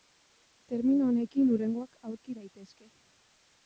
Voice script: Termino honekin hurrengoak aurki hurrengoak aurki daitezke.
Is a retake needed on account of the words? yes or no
yes